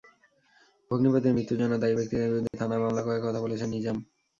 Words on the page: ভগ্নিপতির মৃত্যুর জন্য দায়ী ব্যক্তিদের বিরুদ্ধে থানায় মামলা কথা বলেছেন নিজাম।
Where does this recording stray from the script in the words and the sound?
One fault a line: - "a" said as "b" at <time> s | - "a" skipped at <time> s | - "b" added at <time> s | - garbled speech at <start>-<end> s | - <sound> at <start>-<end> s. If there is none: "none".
- dropout at 2.5-2.5 s
- "করার" added at 3.0 s